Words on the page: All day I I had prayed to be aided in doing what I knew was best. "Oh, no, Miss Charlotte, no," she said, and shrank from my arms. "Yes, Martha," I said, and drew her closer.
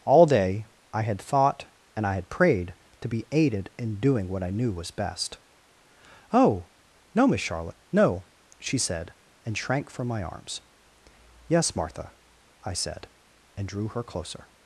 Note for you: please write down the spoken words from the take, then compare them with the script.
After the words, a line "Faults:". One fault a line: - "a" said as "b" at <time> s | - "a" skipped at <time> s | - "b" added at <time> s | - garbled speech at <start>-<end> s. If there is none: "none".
All day I had thought and I had prayed to be aided in doing what I knew was best. "Oh, no, Miss Charlotte, no," she said, and shrank from my arms. "Yes, Martha," I said, and drew her closer.
Faults:
- "had thought and" added at 1.0 s